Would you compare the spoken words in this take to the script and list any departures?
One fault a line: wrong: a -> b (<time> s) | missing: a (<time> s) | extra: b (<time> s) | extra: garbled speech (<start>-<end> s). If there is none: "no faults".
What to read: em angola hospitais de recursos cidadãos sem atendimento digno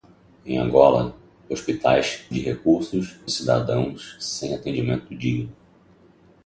no faults